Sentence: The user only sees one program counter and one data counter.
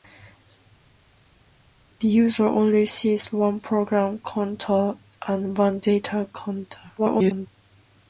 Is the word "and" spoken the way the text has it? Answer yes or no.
yes